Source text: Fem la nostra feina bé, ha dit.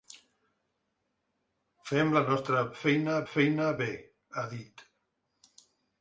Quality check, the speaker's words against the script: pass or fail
fail